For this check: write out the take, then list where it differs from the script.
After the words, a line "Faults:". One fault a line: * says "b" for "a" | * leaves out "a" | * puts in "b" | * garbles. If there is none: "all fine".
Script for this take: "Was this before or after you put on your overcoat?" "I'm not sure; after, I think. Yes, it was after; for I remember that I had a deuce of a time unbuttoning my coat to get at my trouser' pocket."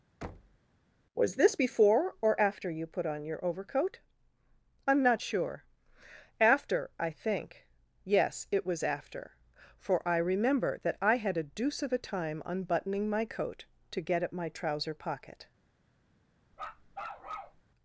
"Was this before or after you put on your overcoat?" "I'm not sure; after, I think. Yes, it was after; for I remember that I had a deuce of a time unbuttoning my coat to get at my trouser' pocket."
Faults:
all fine